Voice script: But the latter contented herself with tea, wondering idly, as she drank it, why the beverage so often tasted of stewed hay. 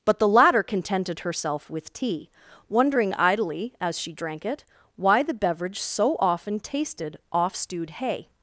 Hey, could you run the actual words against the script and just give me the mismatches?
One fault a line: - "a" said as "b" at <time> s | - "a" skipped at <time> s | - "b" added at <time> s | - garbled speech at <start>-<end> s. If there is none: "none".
- "of" said as "off" at 7.3 s